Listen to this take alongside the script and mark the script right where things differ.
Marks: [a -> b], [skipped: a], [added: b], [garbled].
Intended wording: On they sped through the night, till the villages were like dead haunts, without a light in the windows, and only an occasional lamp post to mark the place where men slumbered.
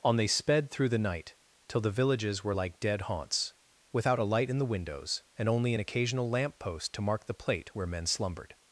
On they sped through the night, till the villages were like dead haunts, without a light in the windows, and only an occasional lamp post to mark the [place -> plate] where men slumbered.